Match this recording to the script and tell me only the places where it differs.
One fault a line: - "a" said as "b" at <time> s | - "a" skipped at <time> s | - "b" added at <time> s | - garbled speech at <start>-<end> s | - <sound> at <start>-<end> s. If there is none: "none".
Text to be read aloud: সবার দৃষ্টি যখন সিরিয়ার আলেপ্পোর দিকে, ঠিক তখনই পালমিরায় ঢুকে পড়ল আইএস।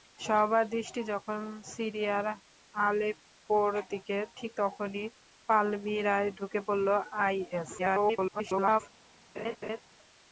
- garbled speech at 7.8-8.8 s
- laugh at 9.4-9.8 s